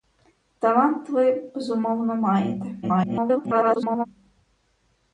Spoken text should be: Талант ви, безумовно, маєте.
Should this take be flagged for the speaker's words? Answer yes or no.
yes